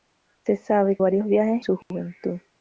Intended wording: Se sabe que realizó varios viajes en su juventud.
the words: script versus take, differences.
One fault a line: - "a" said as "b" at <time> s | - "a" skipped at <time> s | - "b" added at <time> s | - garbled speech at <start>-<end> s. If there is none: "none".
- "que realizó" skipped at 1.0 s
- "en" skipped at 1.6 s